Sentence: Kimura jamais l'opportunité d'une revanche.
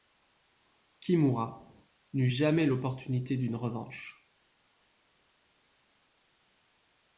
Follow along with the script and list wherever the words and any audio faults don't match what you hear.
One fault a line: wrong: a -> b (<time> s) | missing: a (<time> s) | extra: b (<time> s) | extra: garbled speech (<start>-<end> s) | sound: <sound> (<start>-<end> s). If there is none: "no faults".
extra: n'eut (2.1 s)